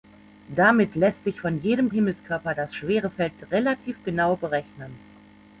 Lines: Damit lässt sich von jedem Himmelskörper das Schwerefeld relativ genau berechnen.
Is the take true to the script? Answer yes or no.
yes